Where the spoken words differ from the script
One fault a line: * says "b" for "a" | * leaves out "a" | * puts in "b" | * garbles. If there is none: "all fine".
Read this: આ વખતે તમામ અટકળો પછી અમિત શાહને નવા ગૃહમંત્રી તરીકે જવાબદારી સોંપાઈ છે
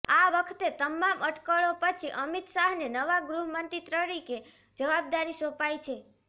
all fine